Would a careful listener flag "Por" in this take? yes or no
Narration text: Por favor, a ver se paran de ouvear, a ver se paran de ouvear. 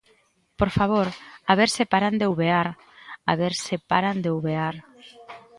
no